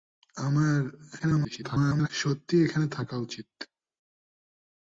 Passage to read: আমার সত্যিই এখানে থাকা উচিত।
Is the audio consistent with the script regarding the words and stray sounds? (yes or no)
no